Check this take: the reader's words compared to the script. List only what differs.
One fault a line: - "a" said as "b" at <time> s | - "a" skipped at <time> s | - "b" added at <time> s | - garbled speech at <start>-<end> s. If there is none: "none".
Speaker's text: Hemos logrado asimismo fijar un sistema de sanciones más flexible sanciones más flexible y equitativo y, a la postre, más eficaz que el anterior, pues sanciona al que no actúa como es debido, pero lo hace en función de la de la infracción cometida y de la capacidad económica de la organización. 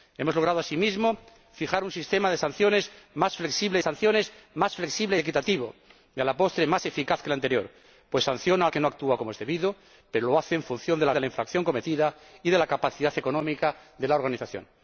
none